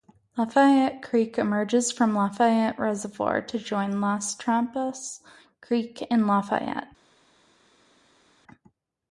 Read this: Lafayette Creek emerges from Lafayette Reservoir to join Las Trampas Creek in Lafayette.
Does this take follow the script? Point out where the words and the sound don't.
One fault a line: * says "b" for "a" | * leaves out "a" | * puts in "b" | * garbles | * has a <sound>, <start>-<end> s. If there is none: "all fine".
all fine